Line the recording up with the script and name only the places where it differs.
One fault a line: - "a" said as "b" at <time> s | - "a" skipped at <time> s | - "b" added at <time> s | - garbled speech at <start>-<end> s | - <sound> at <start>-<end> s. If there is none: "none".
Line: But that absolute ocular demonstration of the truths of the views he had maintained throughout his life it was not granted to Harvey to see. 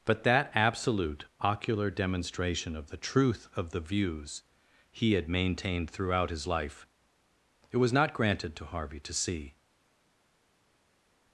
- "truths" said as "truth" at 3.0 s